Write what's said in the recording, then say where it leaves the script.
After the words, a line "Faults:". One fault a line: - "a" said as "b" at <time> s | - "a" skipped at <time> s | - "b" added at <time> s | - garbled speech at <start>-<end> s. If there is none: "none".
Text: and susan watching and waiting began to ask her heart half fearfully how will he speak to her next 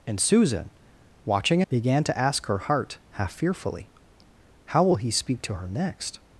and susan watching began to ask her heart half fearfully how will he speak to her next
Faults:
- "and waiting" skipped at 1.6 s